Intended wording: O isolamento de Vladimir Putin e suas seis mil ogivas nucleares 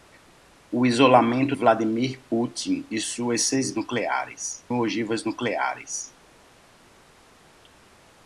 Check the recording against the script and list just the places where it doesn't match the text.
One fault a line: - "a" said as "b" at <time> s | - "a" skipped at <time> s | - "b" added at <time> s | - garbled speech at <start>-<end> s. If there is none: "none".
- "de" skipped at 1.6 s
- "mil" said as "nucleares" at 3.7 s